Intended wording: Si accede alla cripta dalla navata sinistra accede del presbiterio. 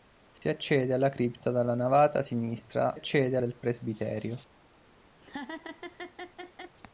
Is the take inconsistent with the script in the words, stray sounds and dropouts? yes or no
yes